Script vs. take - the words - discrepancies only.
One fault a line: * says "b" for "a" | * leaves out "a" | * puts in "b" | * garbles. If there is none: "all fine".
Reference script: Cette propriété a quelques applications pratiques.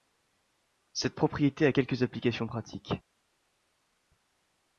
all fine